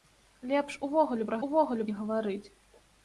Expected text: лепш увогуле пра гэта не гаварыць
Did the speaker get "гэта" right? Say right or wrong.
wrong